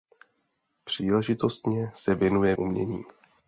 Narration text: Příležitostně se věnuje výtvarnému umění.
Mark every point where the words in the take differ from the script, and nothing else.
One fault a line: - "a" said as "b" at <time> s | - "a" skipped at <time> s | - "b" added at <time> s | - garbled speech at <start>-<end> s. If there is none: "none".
- "výtvarnému" skipped at 2.5 s